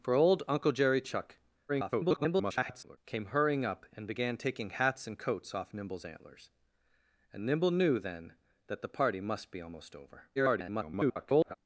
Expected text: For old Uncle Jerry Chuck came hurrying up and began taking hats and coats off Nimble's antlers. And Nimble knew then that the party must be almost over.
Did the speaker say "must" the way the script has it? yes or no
yes